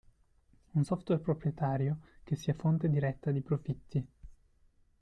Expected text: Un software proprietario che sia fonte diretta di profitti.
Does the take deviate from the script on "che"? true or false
false